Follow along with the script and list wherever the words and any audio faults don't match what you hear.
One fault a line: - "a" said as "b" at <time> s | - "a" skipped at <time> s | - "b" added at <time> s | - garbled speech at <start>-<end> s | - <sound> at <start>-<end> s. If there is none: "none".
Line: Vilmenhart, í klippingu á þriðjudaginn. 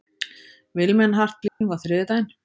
- dropout at 1.5-1.6 s